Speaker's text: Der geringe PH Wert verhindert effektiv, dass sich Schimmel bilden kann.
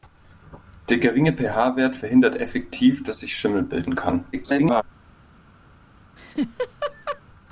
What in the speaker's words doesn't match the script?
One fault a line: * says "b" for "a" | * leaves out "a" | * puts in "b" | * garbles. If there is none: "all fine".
* garbles